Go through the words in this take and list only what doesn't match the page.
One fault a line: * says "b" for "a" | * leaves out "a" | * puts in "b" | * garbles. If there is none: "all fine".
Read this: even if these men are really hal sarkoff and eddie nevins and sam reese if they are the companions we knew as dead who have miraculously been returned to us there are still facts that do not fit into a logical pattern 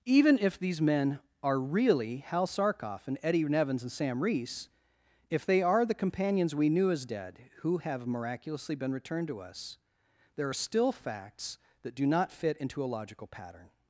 all fine